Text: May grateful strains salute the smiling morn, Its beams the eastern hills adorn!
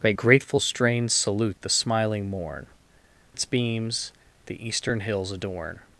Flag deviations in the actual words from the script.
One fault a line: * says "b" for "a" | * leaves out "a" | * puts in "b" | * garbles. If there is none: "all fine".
all fine